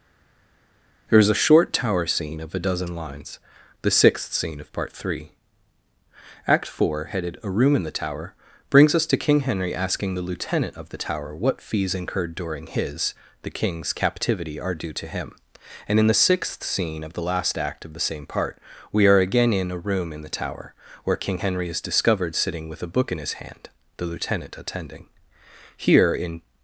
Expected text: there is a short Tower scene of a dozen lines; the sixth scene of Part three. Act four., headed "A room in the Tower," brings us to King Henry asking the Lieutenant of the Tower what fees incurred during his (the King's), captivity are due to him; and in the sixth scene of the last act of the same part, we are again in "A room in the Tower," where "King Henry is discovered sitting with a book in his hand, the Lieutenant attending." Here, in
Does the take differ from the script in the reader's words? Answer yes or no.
no